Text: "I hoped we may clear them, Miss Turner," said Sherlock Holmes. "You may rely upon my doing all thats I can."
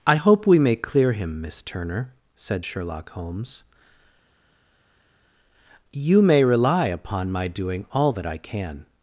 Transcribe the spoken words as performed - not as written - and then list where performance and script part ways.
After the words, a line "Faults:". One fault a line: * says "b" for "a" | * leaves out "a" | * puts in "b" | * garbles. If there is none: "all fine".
"I hope we may clear him, Miss Turner," said Sherlock Holmes. "You may rely upon my doing all that I can."
Faults:
* says "hope" for "hoped"
* says "him" for "them"
* says "that" for "thats"